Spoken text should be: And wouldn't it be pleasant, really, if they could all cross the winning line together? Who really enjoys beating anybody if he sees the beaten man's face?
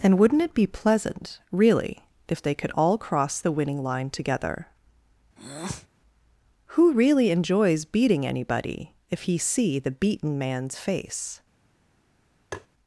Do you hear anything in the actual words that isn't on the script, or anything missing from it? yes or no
yes